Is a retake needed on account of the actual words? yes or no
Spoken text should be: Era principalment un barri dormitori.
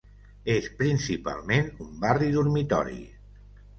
yes